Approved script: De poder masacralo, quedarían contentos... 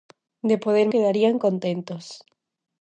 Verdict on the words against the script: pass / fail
fail